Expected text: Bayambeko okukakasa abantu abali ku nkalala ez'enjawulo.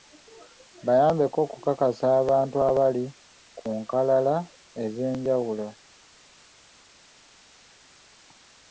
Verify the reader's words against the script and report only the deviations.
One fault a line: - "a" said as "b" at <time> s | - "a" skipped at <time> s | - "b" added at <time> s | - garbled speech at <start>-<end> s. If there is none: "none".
none